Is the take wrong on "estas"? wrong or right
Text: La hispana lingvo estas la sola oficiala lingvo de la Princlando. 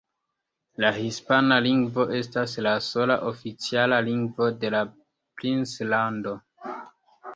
right